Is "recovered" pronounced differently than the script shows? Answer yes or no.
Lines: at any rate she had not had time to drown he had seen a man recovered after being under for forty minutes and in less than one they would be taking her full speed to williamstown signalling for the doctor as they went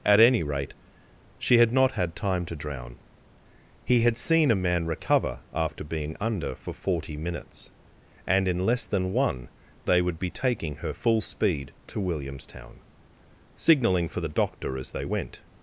yes